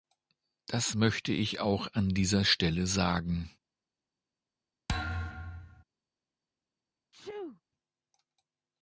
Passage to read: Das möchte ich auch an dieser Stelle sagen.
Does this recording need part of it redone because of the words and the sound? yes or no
yes